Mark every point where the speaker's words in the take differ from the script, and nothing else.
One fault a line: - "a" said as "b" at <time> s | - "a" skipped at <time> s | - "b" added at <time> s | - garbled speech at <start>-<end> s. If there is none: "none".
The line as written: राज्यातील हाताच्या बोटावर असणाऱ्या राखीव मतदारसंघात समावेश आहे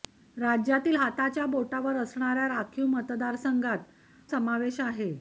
none